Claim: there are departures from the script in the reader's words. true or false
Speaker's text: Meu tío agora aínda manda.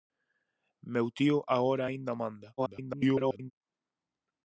true